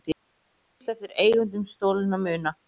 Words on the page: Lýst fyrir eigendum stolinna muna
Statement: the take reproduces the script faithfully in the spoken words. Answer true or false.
false